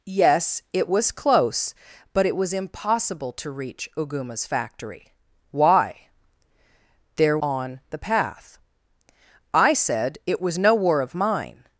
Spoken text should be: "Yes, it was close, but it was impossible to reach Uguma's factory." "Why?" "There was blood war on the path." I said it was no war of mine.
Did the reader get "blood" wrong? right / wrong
wrong